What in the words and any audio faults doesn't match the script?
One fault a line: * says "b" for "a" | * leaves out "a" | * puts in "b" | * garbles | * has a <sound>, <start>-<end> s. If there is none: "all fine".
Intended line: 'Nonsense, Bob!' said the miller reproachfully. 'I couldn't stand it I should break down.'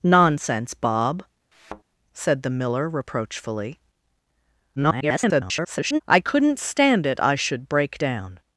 * has a thud, 1.5-1.8 s
* garbles